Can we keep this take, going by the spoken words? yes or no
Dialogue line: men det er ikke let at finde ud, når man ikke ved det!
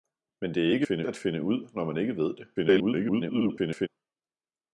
no